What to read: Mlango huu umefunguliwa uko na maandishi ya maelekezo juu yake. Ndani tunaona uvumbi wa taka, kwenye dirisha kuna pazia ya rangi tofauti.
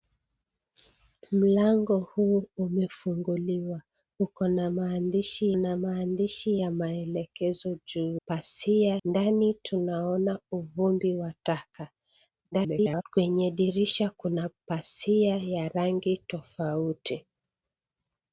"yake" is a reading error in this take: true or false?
true